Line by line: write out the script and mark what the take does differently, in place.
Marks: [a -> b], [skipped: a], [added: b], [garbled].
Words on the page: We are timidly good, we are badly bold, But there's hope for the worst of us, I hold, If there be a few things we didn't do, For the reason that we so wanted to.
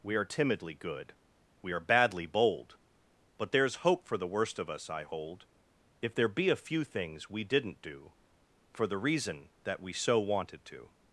We are timidly good, we are badly bold, But there's hope for the worst of us, I hold, If there be a few things we didn't do, For the reason that we so wanted to.